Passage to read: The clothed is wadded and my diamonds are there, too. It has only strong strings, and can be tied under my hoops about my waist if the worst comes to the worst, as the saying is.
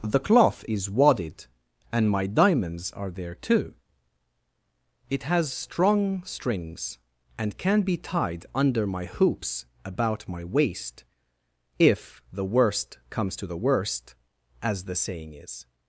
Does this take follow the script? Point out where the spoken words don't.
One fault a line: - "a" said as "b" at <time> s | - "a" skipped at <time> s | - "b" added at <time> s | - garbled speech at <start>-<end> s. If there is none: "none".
- "clothed" said as "cloth" at 0.2 s
- "only" skipped at 5.5 s